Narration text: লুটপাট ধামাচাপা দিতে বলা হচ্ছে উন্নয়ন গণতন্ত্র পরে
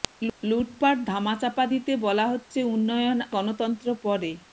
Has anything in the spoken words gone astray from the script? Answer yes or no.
no